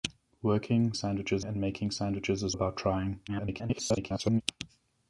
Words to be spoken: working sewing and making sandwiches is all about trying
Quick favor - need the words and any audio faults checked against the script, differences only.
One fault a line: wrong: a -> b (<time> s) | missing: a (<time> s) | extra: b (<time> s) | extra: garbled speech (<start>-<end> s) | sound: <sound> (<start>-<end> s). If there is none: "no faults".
wrong: sewing -> sandwiches (0.9 s)
missing: all (2.5 s)
extra: garbled speech (3.3-4.4 s)